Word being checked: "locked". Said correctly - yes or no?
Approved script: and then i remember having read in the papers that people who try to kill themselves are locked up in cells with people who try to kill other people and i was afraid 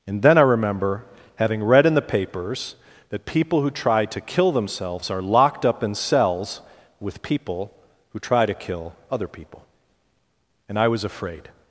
yes